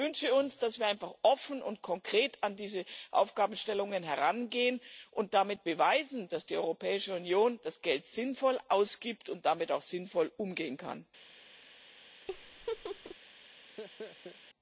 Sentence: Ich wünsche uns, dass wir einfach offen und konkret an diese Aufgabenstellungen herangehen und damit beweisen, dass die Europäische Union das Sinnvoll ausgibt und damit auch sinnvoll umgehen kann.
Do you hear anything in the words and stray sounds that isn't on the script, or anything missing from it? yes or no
yes